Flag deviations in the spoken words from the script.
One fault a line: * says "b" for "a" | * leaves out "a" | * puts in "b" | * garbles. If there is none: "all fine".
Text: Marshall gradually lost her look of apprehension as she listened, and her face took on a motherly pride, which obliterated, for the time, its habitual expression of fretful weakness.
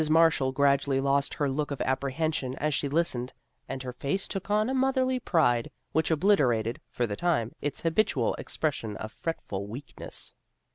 all fine